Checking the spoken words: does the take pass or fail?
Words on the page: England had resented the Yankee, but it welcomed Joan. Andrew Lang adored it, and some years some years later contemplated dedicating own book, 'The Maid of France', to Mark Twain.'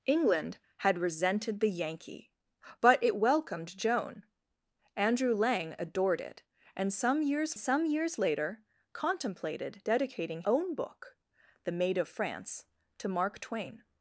pass